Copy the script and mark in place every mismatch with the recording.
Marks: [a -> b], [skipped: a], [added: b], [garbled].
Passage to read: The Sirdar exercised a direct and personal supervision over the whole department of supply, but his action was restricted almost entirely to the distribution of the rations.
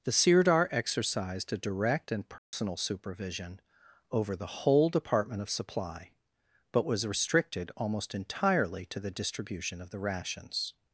The Sirdar exercised a direct and personal supervision over the whole department of supply, but [skipped: his action] was restricted almost entirely to the distribution of the rations.